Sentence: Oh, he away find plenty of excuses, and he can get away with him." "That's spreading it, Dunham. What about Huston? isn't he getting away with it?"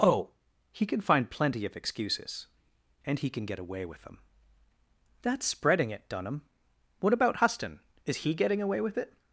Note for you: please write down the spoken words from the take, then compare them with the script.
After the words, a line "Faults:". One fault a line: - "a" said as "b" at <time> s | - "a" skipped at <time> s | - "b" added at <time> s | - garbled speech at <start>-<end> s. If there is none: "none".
Oh, he can find plenty of excuses, and he can get away with them." "That's spreading it, Dunham. What about Huston? is he getting away with it?"
Faults:
- "away" said as "can" at 0.8 s
- "him" said as "them" at 4.0 s
- "isn't" said as "is" at 8.0 s